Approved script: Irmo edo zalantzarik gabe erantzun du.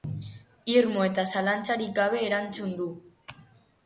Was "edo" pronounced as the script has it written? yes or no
no